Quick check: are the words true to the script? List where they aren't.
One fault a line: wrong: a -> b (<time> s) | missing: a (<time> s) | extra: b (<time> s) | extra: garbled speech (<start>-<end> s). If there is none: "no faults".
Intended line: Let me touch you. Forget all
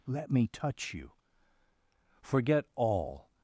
no faults